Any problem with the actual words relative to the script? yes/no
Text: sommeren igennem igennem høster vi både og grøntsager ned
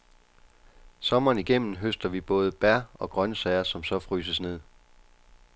yes